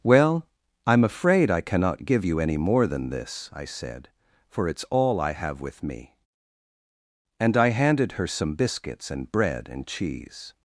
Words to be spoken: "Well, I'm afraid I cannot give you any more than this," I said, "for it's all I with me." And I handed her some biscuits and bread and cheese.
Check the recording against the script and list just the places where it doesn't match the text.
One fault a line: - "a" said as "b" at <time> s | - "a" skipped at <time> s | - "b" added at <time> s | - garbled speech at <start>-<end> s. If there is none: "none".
- "have" added at 5.3 s